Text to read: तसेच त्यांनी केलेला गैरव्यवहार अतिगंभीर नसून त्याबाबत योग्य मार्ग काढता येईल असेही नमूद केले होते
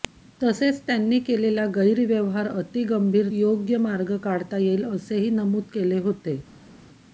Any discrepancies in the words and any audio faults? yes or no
yes